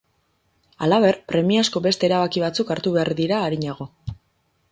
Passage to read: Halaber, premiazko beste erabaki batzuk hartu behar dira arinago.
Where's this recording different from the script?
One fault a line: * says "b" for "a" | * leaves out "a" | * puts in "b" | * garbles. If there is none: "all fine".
all fine